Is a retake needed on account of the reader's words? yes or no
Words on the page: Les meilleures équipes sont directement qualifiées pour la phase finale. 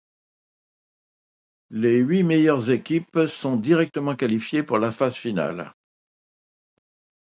yes